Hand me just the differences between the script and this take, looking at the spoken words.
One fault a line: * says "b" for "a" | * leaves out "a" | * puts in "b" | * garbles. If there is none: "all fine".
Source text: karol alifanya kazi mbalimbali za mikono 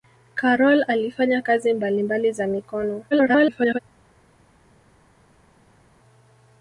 * garbles